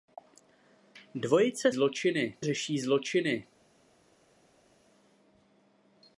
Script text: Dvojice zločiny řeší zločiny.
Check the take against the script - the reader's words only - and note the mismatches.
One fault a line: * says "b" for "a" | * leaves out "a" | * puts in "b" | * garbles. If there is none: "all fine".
all fine